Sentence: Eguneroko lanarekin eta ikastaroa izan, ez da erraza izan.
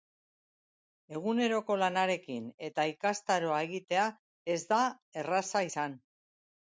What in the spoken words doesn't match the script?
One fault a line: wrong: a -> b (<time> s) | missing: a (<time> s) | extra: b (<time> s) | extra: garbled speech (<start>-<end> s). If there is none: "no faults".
wrong: izan -> egitea (3.7 s)